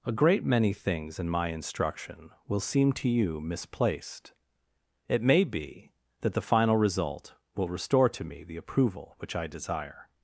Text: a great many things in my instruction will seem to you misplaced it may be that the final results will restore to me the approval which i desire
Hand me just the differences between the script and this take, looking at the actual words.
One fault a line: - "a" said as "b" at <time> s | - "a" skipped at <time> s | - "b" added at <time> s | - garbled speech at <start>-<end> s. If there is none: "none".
- "results" said as "result" at 6.8 s